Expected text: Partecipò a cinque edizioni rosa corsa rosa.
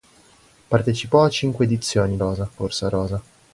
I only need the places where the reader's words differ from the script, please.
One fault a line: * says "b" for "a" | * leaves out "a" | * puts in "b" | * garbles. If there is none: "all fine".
all fine